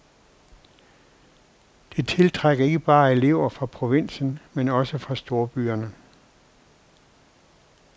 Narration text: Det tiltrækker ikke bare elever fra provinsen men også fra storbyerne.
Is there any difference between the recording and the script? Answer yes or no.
no